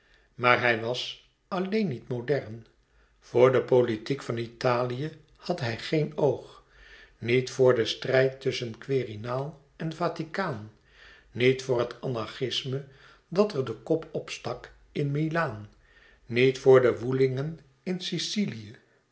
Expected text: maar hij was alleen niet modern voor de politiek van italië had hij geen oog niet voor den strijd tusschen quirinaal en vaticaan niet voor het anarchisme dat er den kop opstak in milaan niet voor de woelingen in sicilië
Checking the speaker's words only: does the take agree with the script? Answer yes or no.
yes